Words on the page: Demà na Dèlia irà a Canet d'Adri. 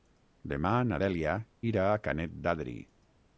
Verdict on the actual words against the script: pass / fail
pass